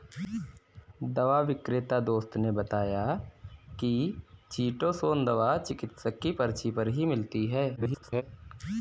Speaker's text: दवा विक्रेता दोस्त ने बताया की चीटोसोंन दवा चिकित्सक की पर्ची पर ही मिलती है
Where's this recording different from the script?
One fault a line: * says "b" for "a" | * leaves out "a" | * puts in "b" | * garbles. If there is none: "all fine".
* garbles